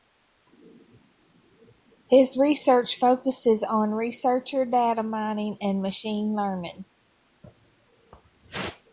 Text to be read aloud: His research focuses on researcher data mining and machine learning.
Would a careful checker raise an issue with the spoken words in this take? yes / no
no